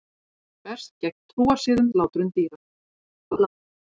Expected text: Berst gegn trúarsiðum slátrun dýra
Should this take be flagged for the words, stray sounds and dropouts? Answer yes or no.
yes